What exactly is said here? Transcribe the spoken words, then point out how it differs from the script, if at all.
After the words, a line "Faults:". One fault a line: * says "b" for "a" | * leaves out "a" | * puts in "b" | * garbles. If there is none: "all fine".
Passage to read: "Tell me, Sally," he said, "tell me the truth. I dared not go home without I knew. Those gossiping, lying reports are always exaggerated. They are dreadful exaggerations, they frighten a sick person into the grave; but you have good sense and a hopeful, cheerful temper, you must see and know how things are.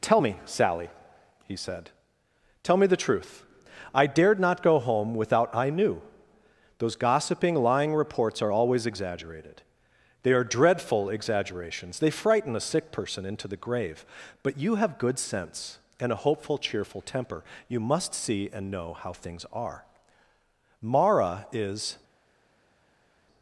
"Tell me, Sally," he said, "tell me the truth. I dared not go home without I knew. Those gossiping, lying reports are always exaggerated. They are dreadful exaggerations, they frighten a sick person into the grave; but you have good sense and a hopeful, cheerful temper, you must see and know how things are. Mara is
Faults:
* puts in "Mara is"